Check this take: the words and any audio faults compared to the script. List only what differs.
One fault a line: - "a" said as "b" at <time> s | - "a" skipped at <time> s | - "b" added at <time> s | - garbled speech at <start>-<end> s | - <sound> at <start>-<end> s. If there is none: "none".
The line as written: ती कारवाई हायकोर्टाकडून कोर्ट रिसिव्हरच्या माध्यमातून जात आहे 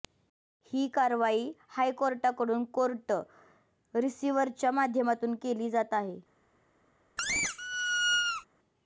- "ती" said as "ही" at 0.7 s
- "केली" added at 5.3 s
- squeak at 7.2-8.5 s